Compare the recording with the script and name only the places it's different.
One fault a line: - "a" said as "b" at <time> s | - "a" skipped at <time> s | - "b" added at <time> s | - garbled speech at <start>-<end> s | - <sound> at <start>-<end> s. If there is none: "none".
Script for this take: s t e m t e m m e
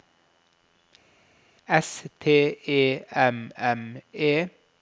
- "t e m" skipped at 3.5 s